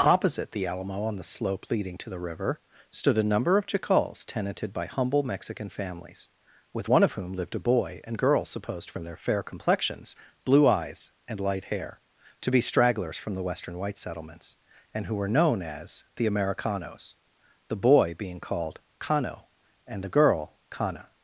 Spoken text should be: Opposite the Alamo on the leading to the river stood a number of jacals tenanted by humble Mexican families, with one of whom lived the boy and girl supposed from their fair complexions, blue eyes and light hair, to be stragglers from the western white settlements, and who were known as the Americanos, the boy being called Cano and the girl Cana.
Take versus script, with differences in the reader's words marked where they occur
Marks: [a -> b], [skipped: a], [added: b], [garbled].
Opposite the Alamo on the [added: slope] leading to the river stood a number of jacals tenanted by humble Mexican families, with one of whom lived [the -> a] boy and girl supposed from their fair complexions, blue eyes and light hair, to be stragglers from the western white settlements, and who were known as the Americanos, the boy being called Cano and the girl Cana.